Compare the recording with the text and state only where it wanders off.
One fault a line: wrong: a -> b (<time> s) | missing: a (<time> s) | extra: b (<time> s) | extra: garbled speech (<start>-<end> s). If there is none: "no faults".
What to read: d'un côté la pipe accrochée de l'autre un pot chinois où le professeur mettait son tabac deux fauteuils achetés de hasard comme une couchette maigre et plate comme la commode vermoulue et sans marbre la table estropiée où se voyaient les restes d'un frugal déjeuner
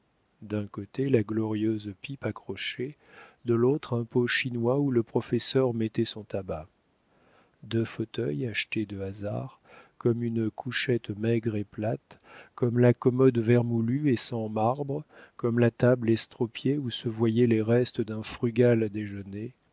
extra: glorieuse (1.2 s)
extra: comme (15.3 s)